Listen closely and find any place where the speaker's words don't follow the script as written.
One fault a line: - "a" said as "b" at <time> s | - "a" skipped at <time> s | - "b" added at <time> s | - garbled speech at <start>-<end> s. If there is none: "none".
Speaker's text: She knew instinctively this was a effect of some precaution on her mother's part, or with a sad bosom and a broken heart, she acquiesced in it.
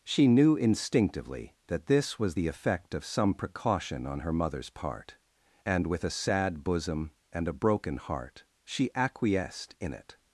- "that" added at 1.7 s
- "a" said as "the" at 2.3 s
- "or" said as "and" at 5.6 s